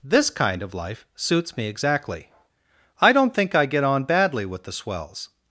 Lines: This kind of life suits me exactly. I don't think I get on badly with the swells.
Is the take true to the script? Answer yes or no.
yes